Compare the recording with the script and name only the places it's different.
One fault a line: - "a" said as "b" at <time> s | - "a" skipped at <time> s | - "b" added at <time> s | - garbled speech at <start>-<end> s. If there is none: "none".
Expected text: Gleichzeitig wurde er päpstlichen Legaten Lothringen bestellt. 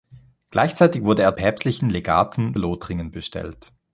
none